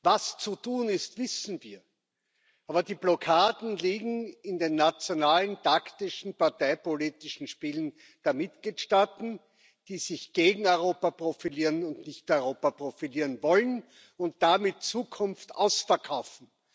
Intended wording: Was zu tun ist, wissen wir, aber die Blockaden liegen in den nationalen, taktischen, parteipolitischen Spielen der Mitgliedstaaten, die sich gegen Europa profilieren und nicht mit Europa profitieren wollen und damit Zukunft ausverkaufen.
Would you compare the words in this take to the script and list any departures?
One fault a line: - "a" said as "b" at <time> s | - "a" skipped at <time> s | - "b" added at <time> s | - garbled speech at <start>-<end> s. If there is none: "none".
- "mit" skipped at 12.3 s